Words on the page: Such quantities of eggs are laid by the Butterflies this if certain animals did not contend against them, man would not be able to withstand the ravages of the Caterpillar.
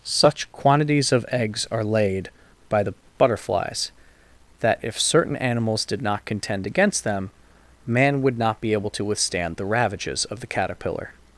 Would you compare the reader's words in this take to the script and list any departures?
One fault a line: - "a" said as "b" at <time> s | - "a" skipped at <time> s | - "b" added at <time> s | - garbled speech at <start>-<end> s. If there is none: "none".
- "this" said as "that" at 4.6 s